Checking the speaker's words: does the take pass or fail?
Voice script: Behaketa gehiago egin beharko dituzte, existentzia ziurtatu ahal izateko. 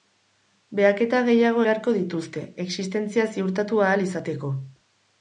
fail